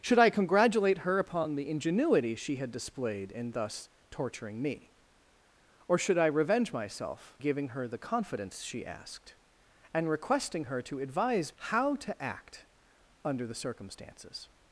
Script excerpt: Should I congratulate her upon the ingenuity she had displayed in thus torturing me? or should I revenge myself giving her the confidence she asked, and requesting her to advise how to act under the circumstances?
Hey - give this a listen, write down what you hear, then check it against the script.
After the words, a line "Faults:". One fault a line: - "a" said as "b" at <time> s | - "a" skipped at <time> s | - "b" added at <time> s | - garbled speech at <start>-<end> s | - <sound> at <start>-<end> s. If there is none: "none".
Should I congratulate her upon the ingenuity she had displayed in thus torturing me? or should I revenge myself giving her the confidence she asked, and requesting her to advise how to act under the circumstances?
Faults:
none